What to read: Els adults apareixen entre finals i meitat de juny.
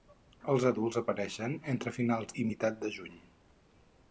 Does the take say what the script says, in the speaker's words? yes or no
yes